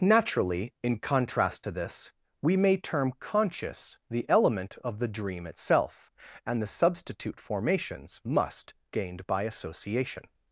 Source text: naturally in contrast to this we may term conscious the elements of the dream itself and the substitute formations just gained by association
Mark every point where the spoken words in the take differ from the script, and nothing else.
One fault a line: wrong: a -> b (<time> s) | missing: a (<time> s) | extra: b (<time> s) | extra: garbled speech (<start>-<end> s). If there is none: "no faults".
wrong: elements -> element (4.3 s)
wrong: just -> must (8.2 s)